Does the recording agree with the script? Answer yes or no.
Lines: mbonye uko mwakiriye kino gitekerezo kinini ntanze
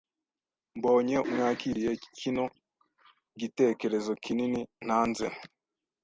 no